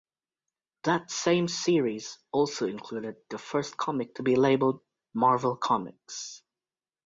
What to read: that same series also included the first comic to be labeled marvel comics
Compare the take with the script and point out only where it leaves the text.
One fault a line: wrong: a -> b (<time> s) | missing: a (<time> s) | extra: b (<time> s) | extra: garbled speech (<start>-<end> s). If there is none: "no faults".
no faults